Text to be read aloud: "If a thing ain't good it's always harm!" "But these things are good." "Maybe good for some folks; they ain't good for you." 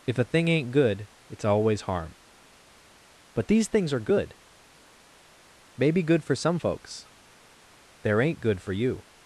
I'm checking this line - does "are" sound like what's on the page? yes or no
yes